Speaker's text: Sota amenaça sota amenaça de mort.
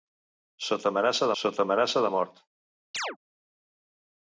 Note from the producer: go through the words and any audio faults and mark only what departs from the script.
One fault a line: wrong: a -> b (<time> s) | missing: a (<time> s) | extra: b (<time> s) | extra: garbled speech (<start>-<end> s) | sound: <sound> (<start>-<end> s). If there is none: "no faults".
sound: chirp (2.9-3.2 s)